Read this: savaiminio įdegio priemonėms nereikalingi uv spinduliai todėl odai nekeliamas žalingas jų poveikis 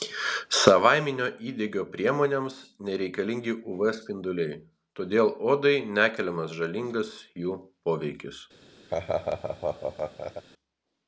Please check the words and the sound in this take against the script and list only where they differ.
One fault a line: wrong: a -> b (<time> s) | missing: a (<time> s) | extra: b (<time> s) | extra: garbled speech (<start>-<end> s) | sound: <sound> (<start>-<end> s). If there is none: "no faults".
sound: laugh (8.9-10.4 s)